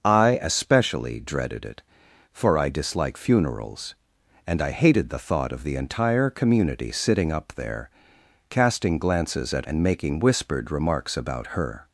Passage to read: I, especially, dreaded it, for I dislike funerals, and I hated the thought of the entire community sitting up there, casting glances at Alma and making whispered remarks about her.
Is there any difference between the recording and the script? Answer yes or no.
yes